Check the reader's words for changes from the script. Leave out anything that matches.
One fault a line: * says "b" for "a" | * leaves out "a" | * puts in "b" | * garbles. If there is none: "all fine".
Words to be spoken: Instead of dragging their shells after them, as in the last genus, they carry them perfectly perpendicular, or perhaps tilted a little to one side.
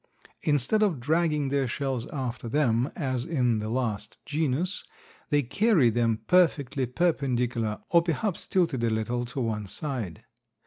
all fine